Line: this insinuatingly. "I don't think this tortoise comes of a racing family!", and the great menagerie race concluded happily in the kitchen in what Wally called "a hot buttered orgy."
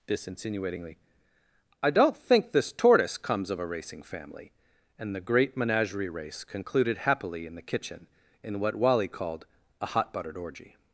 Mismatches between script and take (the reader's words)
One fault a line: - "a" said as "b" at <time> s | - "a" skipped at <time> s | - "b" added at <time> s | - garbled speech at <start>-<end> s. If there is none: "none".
none